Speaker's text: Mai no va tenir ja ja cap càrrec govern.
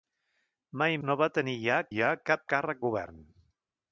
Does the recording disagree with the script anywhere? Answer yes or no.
no